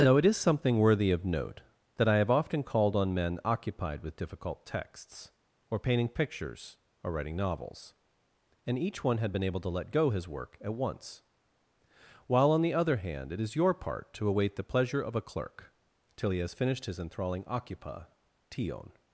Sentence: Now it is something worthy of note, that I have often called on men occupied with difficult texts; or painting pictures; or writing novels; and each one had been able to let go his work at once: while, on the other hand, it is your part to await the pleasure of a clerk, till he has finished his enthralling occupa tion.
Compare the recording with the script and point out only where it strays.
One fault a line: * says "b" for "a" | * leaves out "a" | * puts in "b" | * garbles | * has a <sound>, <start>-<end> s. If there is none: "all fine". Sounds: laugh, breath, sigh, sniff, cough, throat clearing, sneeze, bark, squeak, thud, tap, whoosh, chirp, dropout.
all fine